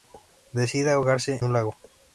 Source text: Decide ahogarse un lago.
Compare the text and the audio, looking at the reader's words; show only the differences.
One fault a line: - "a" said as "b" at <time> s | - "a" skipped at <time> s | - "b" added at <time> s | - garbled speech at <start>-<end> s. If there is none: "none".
none